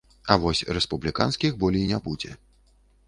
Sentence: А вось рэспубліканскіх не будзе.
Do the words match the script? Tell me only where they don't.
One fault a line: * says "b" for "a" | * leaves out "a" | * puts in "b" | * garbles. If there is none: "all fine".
* puts in "болей"